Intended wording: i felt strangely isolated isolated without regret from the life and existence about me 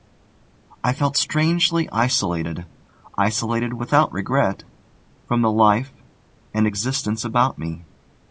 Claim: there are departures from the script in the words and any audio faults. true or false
false